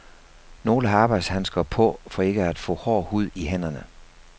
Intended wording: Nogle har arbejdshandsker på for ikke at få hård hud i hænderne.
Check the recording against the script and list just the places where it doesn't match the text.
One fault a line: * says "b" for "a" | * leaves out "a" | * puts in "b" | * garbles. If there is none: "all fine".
all fine